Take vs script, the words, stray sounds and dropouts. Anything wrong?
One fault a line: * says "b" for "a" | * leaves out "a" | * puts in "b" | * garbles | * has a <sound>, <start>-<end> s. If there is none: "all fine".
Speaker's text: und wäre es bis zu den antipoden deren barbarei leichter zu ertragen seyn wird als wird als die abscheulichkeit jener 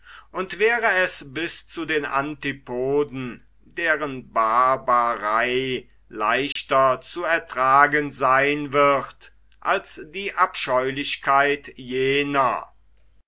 * has a dropout, 6.5-6.6 s
* leaves out "wird als"